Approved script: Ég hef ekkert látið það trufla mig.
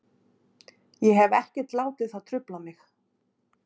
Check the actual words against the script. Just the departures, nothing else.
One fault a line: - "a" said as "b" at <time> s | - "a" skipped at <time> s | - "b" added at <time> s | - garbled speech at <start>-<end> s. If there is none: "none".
none